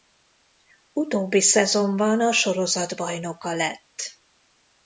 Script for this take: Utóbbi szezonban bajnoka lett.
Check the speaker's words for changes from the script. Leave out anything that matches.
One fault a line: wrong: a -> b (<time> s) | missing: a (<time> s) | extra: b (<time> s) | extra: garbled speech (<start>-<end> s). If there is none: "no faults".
extra: a sorozat (2.2 s)